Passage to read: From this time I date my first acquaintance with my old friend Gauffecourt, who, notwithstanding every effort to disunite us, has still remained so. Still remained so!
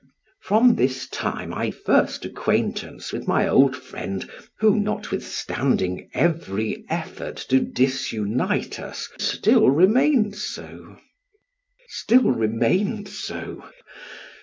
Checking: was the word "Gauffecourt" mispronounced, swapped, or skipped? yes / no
yes